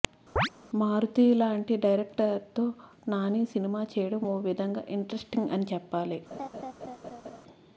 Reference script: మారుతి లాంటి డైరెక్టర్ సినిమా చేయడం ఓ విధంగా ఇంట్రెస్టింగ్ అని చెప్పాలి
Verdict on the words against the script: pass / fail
fail